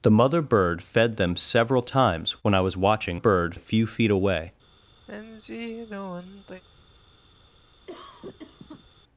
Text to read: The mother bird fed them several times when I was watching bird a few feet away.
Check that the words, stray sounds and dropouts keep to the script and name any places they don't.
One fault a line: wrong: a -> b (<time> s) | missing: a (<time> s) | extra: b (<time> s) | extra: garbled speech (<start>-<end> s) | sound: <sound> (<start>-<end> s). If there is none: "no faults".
sound: sigh (5.1-6.6 s)
sound: cough (7.9-8.9 s)